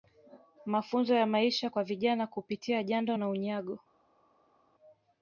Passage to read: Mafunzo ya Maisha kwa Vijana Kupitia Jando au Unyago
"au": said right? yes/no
no